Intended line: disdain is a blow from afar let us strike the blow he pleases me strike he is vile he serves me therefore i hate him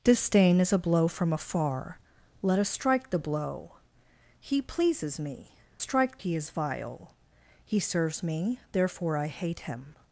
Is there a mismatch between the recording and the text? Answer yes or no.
no